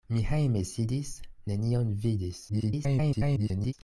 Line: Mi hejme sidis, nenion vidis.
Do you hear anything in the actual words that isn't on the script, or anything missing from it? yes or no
yes